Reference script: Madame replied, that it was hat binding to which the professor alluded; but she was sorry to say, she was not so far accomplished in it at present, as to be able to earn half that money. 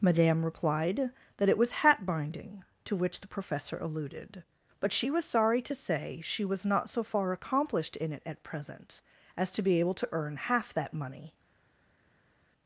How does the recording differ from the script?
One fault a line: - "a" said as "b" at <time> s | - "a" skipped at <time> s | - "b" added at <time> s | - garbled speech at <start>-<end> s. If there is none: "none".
none